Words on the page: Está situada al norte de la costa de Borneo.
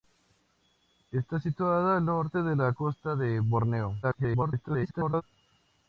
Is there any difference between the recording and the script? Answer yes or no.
yes